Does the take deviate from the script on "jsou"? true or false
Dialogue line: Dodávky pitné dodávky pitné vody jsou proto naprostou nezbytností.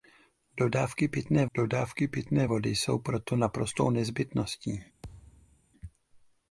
false